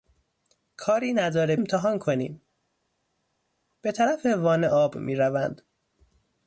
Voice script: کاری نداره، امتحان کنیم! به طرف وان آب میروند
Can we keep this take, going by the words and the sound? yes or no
yes